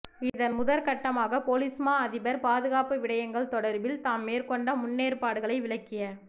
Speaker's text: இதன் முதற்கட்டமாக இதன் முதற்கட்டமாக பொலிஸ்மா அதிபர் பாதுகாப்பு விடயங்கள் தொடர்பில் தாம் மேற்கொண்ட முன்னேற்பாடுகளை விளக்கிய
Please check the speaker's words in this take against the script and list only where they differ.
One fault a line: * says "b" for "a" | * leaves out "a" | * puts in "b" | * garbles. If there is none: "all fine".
* leaves out "இதன் முதற்கட்டமாக"